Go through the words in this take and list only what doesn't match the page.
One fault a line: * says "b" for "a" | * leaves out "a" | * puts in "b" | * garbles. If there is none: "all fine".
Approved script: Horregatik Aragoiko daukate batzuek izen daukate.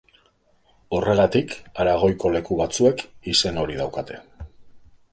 * says "leku" for "daukate"
* puts in "hori"